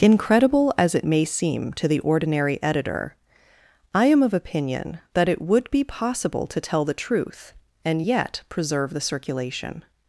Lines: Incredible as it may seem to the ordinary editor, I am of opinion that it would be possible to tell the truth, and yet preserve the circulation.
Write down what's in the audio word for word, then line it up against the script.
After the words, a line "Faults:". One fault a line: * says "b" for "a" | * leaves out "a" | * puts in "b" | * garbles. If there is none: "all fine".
Incredible as it may seem to the ordinary editor, I am of opinion that it would be possible to tell the truth, and yet preserve the circulation.
Faults:
all fine